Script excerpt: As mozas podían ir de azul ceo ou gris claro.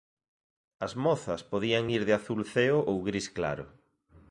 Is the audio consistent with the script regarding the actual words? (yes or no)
yes